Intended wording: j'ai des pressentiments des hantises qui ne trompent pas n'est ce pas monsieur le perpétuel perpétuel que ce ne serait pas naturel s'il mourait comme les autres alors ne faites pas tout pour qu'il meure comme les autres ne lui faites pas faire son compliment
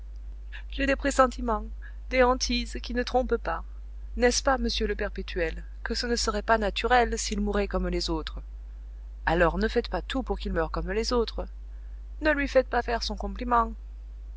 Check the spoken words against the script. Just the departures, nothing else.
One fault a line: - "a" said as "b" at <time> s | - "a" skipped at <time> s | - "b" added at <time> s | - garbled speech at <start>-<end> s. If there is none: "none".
- "perpétuel" skipped at 5.6 s